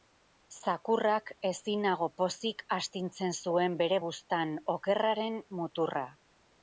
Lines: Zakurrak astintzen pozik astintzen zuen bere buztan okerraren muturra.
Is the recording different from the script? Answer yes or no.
yes